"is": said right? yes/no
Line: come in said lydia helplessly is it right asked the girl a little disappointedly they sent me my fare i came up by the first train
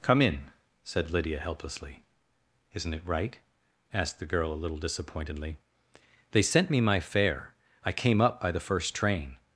no